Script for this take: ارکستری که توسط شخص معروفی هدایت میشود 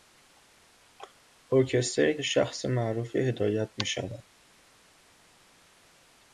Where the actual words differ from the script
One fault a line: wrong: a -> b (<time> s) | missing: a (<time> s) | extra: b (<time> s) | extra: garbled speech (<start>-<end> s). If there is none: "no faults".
missing: که توسط (2.2 s)